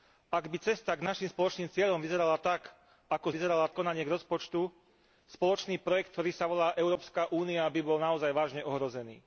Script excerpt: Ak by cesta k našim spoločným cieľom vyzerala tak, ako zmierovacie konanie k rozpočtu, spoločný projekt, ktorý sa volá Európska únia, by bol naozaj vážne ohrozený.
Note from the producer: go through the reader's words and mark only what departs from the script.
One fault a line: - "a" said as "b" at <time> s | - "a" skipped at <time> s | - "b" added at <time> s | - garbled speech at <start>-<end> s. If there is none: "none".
- "zmierovacie" said as "vyzerala" at 3.3 s